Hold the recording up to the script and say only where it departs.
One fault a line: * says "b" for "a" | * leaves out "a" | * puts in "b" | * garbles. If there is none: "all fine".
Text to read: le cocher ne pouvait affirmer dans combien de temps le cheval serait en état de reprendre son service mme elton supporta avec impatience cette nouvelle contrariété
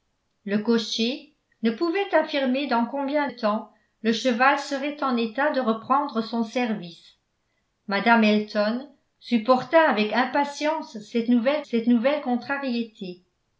* leaves out "de"
* puts in "cette nouvelle"